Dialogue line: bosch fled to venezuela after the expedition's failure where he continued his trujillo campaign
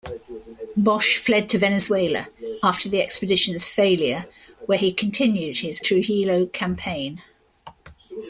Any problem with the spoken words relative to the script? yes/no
no